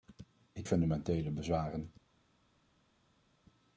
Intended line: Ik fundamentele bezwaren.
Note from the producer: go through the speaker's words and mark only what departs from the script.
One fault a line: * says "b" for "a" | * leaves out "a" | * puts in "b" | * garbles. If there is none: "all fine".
all fine